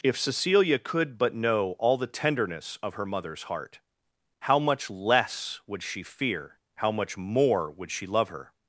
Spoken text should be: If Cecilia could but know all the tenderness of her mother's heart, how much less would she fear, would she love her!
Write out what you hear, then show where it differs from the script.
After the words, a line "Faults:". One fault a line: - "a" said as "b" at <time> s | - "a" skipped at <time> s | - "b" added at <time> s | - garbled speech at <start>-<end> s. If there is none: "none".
If Cecilia could but know all the tenderness of her mother's heart, how much less would she fear, how much more would she love her!
Faults:
- "how much more" added at 6.8 s